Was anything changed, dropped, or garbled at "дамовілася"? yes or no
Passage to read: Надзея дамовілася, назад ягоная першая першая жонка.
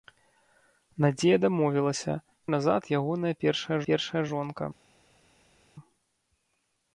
no